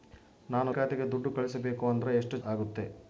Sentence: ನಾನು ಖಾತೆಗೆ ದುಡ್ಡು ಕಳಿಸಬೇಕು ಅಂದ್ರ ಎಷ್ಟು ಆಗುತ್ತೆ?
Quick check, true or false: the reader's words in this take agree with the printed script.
true